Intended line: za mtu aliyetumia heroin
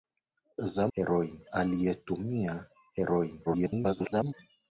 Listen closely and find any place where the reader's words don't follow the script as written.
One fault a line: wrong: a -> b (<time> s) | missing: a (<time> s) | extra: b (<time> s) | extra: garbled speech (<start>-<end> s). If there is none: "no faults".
wrong: mtu -> heroin (0.9 s)
extra: garbled speech (3.5-4.3 s)